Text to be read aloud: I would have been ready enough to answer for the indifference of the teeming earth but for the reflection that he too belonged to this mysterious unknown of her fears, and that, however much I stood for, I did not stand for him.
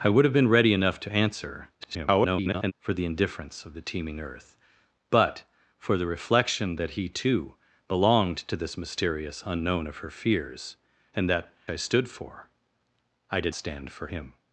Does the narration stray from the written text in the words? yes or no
yes